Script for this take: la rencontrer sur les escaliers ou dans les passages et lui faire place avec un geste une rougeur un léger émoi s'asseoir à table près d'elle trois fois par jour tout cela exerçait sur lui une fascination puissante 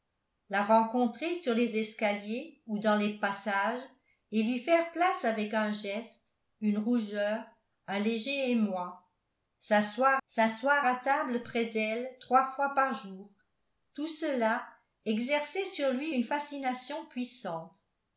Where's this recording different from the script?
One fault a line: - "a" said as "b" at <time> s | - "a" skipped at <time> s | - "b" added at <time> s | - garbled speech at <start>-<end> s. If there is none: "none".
- "s'asseoir" added at 10.3 s